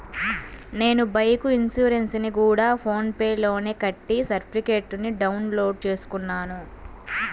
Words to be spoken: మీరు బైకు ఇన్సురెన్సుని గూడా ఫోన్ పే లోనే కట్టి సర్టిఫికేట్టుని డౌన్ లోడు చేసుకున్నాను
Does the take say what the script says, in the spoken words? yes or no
no